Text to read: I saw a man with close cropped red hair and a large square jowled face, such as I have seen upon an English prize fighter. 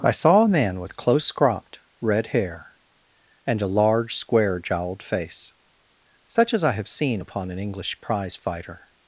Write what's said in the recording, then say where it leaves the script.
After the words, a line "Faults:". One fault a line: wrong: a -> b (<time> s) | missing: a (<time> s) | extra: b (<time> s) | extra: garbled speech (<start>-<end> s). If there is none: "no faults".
I saw a man with close cropped red hair and a large square jowled face, such as I have seen upon an English prize fighter.
Faults:
no faults